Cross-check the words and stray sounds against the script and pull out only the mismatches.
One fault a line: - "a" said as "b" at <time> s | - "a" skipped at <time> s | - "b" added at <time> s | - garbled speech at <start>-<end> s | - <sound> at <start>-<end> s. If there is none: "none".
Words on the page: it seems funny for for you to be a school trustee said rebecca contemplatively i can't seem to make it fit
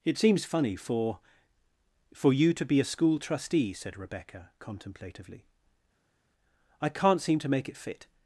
none